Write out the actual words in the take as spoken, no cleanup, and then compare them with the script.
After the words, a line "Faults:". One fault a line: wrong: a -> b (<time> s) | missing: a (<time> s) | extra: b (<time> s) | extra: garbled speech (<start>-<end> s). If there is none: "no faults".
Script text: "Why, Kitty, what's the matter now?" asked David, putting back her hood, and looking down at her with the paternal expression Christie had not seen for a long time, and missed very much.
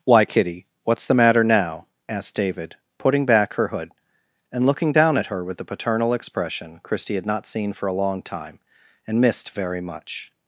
"Why, Kitty, what's the matter now?" asked David, putting back her hood, and looking down at her with the paternal expression Christie had not seen for a long time, and missed very much.
Faults:
no faults